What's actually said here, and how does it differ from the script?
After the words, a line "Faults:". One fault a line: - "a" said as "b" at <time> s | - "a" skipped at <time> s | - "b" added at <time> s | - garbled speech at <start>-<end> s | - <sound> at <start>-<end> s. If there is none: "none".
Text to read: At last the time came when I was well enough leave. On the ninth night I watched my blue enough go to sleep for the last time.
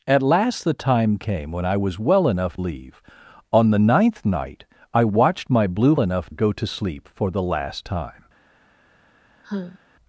At last the time came when I was well enough leave. On the ninth night I watched my blue enough go to sleep for the last time.
Faults:
- sigh at 9.4-9.8 s